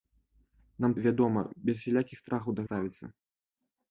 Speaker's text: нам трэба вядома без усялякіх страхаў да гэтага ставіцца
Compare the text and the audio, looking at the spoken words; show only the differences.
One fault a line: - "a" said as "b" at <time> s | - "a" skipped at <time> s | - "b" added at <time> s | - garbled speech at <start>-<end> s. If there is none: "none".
- "трэба" skipped at 0.9 s
- "гэтага" skipped at 2.7 s